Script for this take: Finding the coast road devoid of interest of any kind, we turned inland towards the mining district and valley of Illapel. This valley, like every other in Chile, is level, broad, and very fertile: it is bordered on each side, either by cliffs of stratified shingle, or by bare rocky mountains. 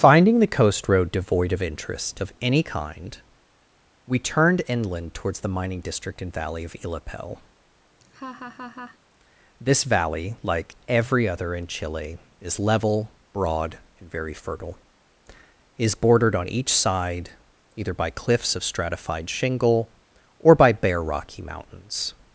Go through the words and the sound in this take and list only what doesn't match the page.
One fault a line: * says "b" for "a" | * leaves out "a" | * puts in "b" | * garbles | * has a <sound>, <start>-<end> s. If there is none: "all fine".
* has a laugh, 8.0-9.0 s